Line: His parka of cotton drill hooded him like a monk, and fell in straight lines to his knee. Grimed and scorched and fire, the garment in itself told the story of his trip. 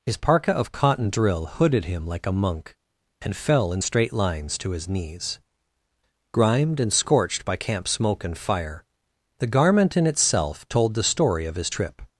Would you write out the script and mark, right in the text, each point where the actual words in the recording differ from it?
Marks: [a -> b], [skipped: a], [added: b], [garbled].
His parka of cotton drill hooded him like a monk, and fell in straight lines to his [knee. -> knees] Grimed and scorched [added: by camp smoke] and fire, the garment in itself told the story of his trip.